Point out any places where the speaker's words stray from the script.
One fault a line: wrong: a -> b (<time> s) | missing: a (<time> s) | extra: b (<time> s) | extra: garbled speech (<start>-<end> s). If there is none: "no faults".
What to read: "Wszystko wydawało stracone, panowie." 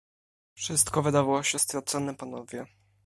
extra: się (1.4 s)